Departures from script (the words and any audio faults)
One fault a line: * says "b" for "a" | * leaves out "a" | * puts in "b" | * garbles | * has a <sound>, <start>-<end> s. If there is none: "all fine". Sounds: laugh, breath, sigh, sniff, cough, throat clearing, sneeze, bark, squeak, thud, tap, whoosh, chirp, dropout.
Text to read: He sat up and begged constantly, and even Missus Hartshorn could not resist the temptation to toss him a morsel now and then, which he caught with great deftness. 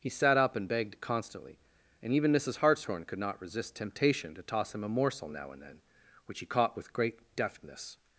* leaves out "the"